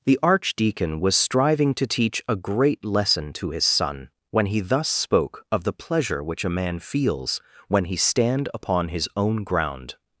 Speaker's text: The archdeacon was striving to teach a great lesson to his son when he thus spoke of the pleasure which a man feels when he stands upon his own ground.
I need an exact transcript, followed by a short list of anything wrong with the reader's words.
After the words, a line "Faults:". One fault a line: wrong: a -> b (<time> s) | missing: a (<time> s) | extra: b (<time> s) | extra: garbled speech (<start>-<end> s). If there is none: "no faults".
The archdeacon was striving to teach a great lesson to his son when he thus spoke of the pleasure which a man feels when he stand upon his own ground.
Faults:
wrong: stands -> stand (8.0 s)